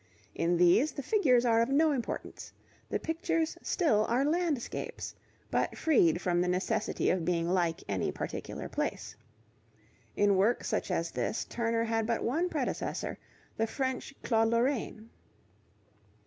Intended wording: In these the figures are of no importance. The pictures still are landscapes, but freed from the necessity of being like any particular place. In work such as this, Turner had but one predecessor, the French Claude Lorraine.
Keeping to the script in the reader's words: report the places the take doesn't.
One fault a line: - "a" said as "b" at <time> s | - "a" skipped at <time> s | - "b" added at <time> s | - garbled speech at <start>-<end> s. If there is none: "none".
none